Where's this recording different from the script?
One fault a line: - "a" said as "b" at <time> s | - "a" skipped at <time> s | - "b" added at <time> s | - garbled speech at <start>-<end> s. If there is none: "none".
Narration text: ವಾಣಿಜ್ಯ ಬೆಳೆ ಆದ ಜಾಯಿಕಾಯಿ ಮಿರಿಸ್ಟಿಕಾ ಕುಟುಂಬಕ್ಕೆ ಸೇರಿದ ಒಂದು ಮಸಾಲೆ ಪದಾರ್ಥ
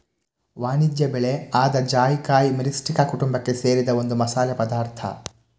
none